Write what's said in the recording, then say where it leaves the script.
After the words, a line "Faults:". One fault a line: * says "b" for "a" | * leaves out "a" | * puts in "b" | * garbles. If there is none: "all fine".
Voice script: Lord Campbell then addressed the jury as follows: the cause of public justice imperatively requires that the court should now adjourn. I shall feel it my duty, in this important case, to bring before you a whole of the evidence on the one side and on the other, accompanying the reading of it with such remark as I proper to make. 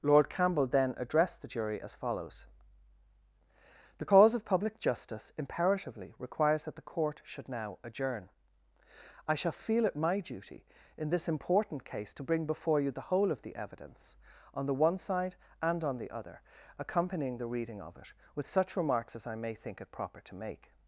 Lord Campbell then addressed the jury as follows: the cause of public justice imperatively requires that the court should now adjourn. I shall feel it my duty, in this important case, to bring before you the whole of the evidence on the one side and on the other, accompanying the reading of it with such remarks as I may think it proper to make.
Faults:
* says "the" for "a"
* says "remarks" for "remark"
* puts in "may think it"